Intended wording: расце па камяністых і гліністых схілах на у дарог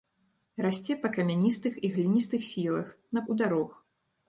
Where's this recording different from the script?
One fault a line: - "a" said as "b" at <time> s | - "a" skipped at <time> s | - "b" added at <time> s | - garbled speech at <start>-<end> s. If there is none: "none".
none